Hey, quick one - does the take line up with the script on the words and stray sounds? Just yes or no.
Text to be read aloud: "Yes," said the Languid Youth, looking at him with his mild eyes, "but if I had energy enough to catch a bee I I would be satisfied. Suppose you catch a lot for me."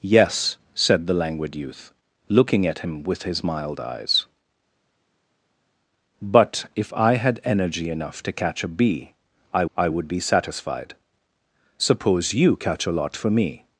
yes